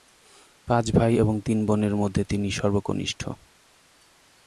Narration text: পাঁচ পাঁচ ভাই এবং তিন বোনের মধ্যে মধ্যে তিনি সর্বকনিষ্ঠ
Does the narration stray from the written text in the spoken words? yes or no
yes